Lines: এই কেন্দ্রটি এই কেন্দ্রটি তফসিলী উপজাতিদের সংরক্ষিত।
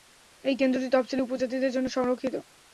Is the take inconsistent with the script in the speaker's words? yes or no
yes